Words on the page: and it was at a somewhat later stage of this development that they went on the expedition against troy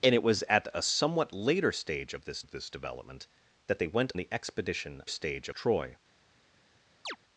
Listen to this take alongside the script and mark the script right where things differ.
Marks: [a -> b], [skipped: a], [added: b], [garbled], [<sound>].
and it was at a somewhat later stage of this [added: of this] development that they went [skipped: on] the expedition [against -> stage] troy [chirp]